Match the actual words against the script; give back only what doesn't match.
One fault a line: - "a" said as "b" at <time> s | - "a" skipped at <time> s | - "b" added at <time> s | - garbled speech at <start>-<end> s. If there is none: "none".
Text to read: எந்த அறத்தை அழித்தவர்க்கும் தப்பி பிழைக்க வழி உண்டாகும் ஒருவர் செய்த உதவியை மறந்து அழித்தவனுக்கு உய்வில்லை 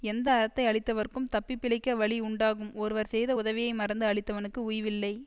none